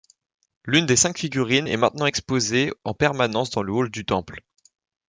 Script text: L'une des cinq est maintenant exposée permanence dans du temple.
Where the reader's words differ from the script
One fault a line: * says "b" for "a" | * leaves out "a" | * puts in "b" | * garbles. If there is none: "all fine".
* puts in "figurines"
* puts in "en"
* puts in "le hall"